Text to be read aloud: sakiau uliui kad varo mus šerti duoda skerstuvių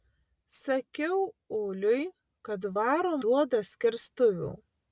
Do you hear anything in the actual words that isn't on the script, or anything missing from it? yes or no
yes